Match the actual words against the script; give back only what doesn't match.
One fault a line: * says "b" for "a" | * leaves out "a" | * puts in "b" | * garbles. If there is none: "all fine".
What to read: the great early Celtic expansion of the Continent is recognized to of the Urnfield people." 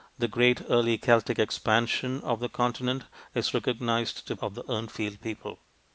all fine